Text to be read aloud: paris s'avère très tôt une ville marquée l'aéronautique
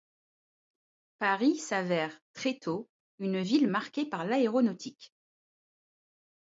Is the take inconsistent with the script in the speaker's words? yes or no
yes